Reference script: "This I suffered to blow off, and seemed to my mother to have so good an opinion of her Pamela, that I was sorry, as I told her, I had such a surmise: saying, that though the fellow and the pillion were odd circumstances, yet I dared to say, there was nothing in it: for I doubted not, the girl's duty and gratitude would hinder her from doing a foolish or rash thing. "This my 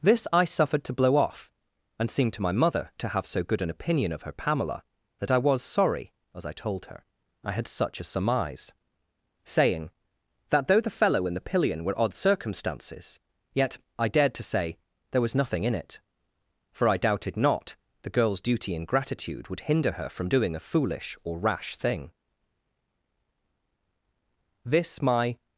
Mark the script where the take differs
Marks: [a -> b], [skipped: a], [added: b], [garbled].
"This I suffered to blow off, and seemed to my mother to have so good an opinion of her Pamela, that I was sorry, as I told her, I had such a surmise: saying, that though the fellow and the pillion were odd circumstances, yet I dared to say, there was nothing in it: for I doubted not, the girl's duty and gratitude would hinder her from doing a foolish or rash thing. "This my